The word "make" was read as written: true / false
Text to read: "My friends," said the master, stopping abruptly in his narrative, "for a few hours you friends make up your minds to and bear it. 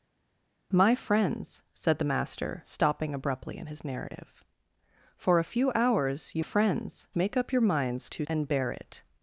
true